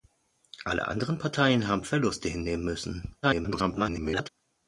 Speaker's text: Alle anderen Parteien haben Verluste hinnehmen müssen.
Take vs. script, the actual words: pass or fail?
fail